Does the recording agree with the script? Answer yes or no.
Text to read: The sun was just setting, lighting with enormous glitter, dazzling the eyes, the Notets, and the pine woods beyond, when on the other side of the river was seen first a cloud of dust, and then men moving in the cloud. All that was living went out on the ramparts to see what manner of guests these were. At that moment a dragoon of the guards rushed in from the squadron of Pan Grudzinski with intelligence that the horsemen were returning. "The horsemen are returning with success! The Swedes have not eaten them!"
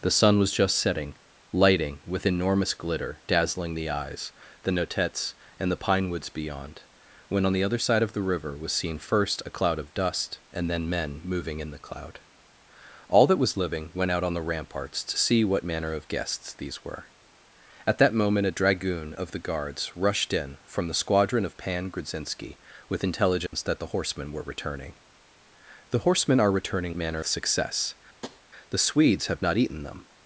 no